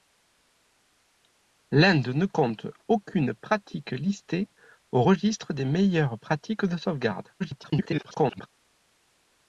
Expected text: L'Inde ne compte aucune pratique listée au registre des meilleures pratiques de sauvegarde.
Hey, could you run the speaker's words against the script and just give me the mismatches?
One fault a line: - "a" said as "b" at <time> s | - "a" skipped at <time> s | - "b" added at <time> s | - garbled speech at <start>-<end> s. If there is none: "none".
- garbled speech at 7.4-8.5 s